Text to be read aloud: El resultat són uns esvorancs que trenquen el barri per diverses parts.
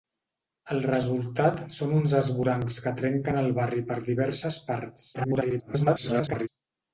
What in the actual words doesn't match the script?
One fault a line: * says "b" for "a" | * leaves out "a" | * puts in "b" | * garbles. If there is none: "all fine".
* garbles